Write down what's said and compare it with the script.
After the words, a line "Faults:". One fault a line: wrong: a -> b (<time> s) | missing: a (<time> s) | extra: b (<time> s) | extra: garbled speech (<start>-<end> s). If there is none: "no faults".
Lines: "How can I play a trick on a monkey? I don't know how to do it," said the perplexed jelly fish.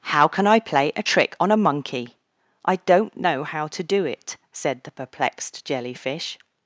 "How can I play a trick on a monkey? I don't know how to do it," said the perplexed jelly fish.
Faults:
no faults